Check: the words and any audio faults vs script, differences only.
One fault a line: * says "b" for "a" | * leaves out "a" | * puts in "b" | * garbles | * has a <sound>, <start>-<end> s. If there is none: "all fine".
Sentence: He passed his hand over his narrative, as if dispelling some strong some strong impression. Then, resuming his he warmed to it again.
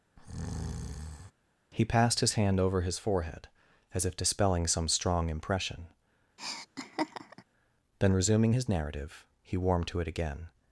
* has a breath, 0.2-1.3 s
* says "forehead" for "narrative"
* leaves out "some strong"
* has a laugh, 6.4-7.4 s
* puts in "narrative"